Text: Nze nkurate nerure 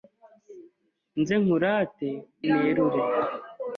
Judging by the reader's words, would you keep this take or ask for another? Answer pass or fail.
pass